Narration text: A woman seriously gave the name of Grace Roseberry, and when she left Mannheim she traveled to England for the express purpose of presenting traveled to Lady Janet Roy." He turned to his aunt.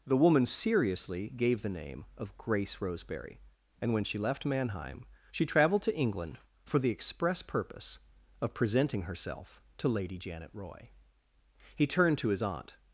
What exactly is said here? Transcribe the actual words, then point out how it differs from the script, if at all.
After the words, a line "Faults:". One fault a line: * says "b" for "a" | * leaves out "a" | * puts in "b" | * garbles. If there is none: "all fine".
The woman seriously gave the name of Grace Roseberry, and when she left Mannheim she traveled to England for the express purpose of presenting herself to Lady Janet Roy." He turned to his aunt.
Faults:
* says "The" for "A"
* says "herself" for "traveled"